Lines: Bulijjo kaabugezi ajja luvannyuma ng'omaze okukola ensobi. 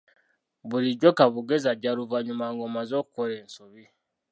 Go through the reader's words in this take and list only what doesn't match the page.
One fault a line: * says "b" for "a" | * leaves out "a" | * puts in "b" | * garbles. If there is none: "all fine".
all fine